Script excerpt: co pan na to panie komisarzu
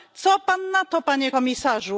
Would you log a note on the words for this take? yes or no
no